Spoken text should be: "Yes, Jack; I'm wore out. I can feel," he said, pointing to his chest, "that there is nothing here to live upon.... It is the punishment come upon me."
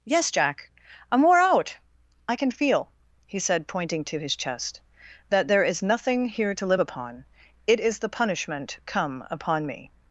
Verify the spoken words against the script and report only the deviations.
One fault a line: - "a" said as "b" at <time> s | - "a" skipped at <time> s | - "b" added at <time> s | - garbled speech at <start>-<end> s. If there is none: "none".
none